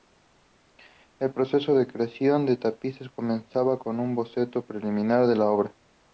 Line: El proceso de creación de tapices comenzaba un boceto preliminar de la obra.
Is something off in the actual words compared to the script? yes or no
yes